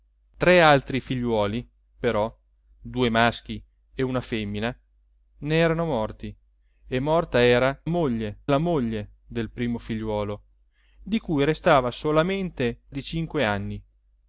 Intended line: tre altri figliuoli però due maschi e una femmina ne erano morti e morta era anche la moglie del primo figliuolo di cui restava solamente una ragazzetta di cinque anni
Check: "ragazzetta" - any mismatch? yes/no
yes